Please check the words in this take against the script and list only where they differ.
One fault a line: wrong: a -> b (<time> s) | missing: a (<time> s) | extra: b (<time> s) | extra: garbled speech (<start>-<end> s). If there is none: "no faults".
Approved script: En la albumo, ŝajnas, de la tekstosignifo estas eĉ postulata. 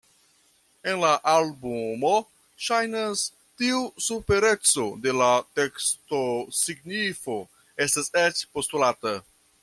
extra: tiu supereco (3.6 s)